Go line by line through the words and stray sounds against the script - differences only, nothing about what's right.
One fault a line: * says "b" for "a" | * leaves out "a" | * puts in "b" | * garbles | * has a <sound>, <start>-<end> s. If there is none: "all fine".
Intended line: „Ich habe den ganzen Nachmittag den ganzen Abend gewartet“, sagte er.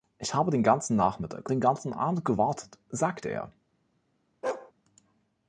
* has a bark, 4.4-4.7 s